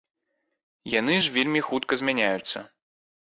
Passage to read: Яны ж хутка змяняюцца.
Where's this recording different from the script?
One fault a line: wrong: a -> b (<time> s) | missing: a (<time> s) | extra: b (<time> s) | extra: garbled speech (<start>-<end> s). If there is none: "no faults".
extra: вельмі (1.4 s)